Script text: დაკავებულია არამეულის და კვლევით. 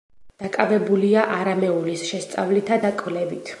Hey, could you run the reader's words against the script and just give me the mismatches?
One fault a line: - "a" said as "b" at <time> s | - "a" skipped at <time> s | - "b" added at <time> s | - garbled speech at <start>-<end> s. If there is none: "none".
- "შესწავლითა" added at 2.1 s